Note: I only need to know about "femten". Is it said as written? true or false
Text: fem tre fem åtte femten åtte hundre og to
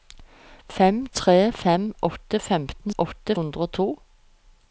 true